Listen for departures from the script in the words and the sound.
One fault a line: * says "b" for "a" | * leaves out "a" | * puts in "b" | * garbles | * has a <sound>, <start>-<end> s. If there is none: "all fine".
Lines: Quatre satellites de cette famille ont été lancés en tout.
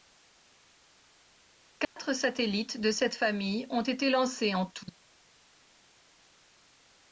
* has a dropout, 1.8-2.0 s